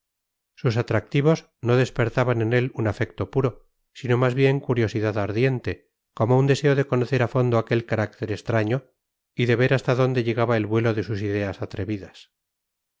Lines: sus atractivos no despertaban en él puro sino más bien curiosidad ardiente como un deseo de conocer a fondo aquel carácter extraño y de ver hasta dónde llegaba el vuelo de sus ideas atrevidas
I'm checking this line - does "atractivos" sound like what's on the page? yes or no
yes